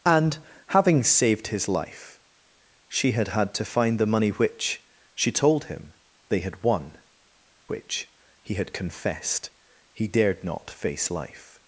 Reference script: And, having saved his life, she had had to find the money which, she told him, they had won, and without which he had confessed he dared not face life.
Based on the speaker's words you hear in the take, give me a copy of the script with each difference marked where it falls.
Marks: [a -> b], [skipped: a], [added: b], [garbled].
And, having saved his life, she had had to find the money which, she told him, they had won, [skipped: and without] which he had confessed he dared not face life.